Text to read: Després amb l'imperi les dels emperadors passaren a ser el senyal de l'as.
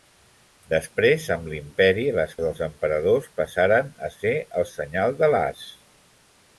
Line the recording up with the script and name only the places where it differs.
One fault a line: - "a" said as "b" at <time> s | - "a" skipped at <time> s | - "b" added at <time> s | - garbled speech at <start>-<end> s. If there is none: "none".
none